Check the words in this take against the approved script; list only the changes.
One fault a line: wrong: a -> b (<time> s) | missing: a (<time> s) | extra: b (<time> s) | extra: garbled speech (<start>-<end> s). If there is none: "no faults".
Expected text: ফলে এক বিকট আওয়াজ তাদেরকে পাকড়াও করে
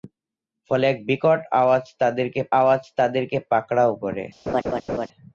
extra: আওয়াজ তাদেরকে (2.6 s)